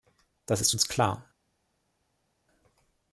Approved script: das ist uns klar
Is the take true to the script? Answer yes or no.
yes